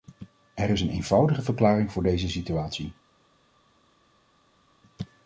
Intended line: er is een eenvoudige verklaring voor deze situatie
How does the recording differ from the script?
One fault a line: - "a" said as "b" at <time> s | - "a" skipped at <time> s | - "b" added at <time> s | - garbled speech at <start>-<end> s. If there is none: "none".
none